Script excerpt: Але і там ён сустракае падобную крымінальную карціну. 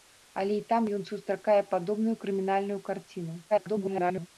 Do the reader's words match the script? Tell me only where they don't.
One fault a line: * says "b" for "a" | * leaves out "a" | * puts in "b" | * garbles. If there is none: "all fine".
* garbles